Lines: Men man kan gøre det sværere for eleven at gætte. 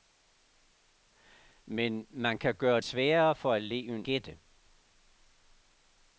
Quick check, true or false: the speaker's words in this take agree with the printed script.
false